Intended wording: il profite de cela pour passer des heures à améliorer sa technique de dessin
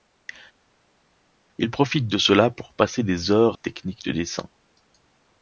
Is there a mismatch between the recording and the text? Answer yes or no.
yes